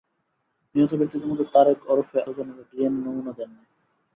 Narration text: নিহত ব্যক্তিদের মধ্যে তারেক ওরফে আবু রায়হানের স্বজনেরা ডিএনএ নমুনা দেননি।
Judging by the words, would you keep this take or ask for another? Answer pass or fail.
fail